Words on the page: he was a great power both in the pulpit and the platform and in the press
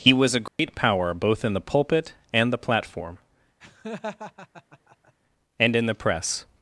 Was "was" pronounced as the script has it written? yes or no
yes